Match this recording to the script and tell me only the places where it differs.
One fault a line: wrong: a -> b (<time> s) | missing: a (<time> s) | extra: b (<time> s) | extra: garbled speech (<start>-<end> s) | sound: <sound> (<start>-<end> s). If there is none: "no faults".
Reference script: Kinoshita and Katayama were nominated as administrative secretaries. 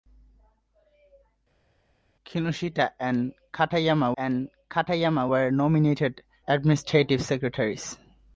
extra: and Katayama (4.2 s)
missing: as (6.2 s)